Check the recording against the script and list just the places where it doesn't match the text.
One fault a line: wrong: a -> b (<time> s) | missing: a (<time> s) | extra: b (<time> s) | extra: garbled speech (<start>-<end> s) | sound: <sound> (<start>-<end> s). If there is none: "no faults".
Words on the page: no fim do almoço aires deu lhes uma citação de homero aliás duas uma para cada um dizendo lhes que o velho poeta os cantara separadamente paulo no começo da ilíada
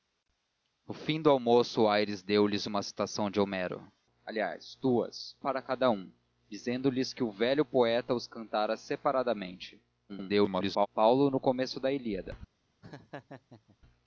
missing: uma (5.4 s)
extra: garbled speech (10.1-10.9 s)
sound: laugh (12.8-13.8 s)